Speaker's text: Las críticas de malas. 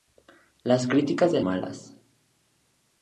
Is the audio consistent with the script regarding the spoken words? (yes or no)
yes